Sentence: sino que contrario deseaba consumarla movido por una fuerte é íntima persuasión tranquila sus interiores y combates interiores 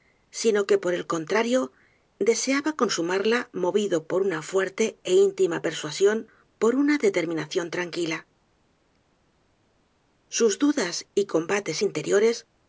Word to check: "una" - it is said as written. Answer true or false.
true